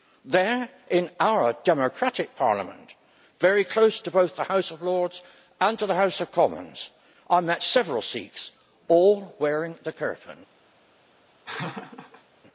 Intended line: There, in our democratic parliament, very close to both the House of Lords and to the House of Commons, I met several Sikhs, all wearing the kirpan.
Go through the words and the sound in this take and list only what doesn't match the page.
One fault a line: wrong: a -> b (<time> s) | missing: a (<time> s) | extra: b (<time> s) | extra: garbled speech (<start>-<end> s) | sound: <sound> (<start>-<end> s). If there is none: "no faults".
sound: laugh (11.5-12.2 s)